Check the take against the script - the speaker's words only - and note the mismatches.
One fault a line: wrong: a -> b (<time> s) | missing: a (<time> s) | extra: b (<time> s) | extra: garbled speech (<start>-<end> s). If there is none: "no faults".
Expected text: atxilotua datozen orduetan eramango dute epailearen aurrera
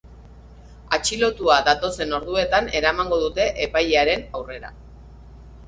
no faults